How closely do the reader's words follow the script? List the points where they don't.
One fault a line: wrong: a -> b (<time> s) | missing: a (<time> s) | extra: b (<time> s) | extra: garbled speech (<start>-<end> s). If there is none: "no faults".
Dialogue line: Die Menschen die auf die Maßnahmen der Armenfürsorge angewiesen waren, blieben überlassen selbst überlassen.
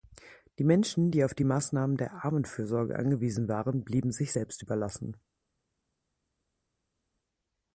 wrong: überlassen -> sich (4.1 s)